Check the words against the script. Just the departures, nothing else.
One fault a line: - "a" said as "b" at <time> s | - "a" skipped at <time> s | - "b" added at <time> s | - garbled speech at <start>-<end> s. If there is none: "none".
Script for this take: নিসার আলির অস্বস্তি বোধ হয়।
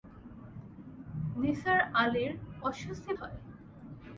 - "বোধ" skipped at 3.1 s